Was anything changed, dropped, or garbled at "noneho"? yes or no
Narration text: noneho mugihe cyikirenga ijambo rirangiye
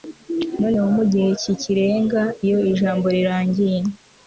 no